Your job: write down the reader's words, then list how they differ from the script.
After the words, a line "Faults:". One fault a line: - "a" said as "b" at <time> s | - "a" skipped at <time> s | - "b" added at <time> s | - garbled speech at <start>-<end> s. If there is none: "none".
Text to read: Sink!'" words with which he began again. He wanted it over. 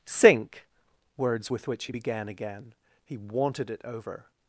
Sink!'" words with which he began again. He wanted it over.
Faults:
none